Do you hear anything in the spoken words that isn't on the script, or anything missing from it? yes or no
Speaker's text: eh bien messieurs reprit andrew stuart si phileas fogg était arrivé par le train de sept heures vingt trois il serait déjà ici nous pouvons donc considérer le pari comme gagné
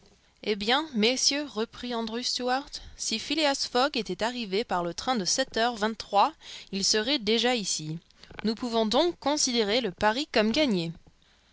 no